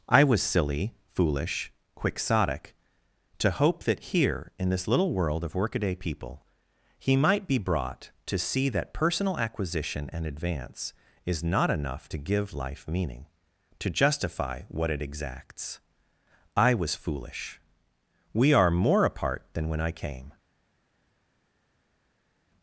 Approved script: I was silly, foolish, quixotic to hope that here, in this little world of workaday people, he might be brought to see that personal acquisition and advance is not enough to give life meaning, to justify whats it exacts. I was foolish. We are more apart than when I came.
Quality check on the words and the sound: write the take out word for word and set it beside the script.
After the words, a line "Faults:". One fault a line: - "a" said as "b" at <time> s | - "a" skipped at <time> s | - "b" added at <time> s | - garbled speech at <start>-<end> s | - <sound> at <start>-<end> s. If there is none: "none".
I was silly, foolish, quixotic to hope that here, in this little world of workaday people, he might be brought to see that personal acquisition and advance is not enough to give life meaning, to justify what it exacts. I was foolish. We are more apart than when I came.
Faults:
- "whats" said as "what" at 14.7 s